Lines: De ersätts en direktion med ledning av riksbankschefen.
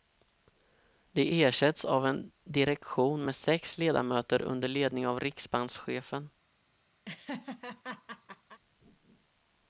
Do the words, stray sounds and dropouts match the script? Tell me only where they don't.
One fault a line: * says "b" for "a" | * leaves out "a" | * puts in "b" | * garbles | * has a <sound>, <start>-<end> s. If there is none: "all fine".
* puts in "av"
* puts in "sex ledamöter under"
* has a laugh, 7.0-8.6 s